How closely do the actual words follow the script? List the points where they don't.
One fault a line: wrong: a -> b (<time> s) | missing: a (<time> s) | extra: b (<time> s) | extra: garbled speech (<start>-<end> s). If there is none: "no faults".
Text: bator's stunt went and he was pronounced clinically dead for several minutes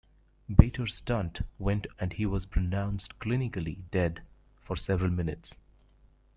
no faults